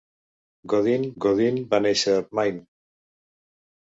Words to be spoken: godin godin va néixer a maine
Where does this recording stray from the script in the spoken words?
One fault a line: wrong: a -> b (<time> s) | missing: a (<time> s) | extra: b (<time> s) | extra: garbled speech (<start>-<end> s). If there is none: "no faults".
no faults